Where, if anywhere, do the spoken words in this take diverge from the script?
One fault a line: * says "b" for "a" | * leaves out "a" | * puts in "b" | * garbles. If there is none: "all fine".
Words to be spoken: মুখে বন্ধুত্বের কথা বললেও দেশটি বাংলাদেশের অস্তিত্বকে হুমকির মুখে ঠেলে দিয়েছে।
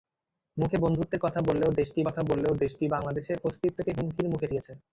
* puts in "কথা বললেও দেশটি"
* leaves out "ঠেলে"